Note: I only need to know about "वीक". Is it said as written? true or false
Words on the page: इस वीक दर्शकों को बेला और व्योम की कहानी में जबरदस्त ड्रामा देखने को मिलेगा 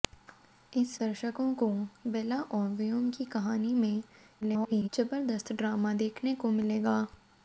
false